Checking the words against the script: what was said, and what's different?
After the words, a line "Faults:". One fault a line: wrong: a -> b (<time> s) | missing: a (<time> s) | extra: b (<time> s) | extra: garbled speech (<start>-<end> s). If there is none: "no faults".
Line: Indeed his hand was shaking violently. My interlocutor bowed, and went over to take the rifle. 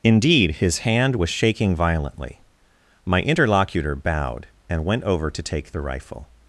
Indeed his hand was shaking violently. My interlocutor bowed, and went over to take the rifle.
Faults:
no faults